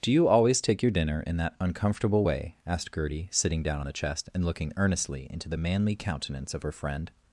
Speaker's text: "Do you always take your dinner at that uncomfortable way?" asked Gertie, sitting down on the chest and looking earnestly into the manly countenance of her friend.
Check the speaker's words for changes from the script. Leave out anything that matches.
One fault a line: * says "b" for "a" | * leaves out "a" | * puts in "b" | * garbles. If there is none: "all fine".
* says "in" for "at"